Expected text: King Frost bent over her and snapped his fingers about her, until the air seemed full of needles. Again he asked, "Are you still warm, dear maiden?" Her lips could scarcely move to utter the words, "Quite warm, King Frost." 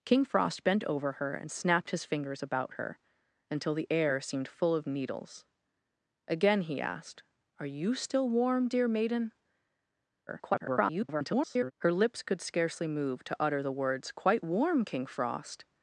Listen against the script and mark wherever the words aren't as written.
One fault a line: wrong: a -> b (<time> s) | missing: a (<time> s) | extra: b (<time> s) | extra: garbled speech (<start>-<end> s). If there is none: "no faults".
extra: garbled speech (10.3-11.7 s)